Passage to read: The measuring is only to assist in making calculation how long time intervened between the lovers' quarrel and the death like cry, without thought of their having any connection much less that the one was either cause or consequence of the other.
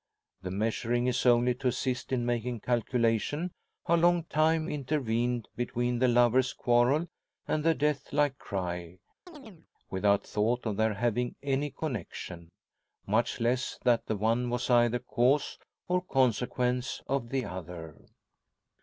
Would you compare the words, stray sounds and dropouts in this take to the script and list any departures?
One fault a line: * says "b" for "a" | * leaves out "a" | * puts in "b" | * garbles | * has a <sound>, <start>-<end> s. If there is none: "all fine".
* has a chirp, 9.3-9.7 s